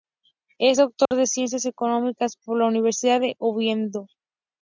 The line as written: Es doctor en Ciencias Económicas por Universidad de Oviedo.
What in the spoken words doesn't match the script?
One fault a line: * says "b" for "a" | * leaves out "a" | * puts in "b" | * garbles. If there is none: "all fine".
* puts in "la"